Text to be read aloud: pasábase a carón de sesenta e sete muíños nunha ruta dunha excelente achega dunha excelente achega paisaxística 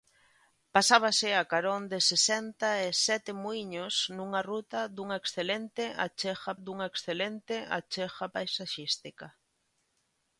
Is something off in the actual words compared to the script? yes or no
no